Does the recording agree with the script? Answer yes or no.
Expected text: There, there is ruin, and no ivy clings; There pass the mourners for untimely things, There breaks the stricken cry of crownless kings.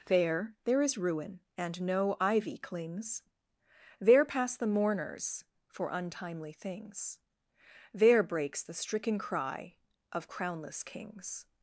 yes